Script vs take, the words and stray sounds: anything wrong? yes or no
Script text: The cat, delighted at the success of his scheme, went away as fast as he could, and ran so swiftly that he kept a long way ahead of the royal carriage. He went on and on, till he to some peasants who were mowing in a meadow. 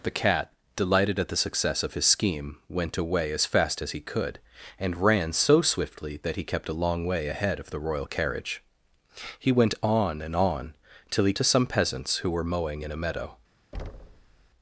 yes